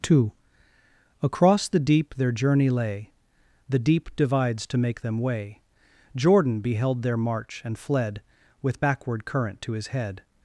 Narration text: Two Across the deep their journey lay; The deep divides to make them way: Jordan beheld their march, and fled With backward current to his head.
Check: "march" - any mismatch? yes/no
no